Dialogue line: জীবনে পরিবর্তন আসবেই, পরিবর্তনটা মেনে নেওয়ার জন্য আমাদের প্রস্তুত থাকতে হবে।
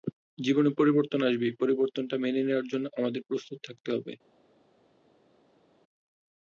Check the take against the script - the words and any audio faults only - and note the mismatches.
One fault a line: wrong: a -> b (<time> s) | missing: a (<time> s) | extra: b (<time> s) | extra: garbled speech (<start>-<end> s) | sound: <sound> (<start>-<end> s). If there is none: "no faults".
no faults